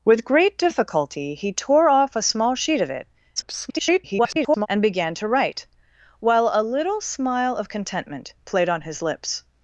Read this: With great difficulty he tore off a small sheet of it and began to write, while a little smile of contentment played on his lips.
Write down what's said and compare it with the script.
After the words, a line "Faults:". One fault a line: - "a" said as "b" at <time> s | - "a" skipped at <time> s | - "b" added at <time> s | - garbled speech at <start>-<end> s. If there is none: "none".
With great difficulty he tore off a small sheet of it [garbled] and began to write, while a little smile of contentment played on his lips.
Faults:
- garbled speech at 3.4-4.7 s